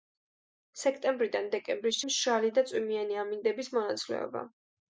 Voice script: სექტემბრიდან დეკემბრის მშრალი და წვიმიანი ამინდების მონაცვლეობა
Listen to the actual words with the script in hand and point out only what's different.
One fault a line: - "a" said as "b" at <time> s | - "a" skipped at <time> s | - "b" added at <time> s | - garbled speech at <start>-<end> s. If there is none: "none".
none